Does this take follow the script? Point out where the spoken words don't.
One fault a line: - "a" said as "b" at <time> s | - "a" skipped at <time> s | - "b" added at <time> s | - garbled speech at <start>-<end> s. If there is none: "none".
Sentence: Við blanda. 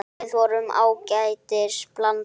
- "vorum ágætis" added at 0.4 s